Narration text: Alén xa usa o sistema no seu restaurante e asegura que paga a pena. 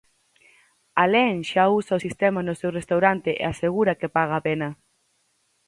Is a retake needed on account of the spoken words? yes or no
no